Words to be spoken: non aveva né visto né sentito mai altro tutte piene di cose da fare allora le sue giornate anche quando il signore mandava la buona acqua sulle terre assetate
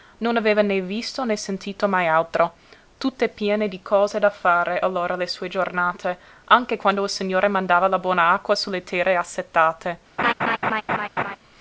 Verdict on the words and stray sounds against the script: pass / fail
fail